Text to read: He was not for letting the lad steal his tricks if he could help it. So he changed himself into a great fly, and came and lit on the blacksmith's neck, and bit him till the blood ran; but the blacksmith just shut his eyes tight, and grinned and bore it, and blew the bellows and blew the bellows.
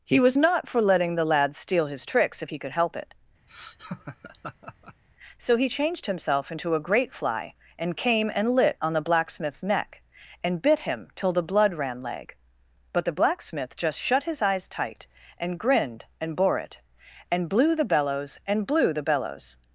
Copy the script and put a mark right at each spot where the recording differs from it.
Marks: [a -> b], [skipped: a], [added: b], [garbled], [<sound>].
He was not for letting the lad steal his tricks if he could help it. [laugh] So he changed himself into a great fly, and came and lit on the blacksmith's neck, and bit him till the blood ran; [added: leg] but the blacksmith just shut his eyes tight, and grinned and bore it, and blew the bellows and blew the bellows.